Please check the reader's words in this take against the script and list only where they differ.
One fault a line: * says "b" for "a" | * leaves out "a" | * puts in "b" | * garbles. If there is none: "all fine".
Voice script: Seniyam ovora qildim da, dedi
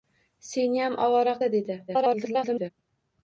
* leaves out "qildim"
* garbles